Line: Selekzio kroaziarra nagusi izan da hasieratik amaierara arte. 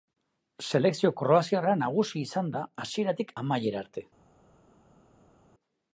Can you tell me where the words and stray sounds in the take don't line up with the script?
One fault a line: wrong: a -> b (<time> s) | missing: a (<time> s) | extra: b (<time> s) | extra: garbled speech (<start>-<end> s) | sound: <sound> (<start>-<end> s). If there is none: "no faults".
no faults